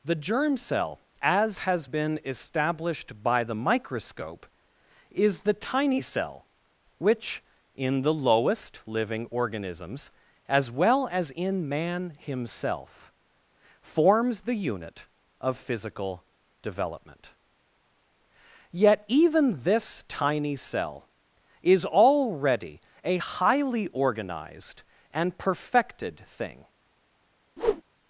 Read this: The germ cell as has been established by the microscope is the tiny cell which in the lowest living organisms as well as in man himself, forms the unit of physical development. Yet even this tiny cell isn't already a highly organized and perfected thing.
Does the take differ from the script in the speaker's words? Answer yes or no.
yes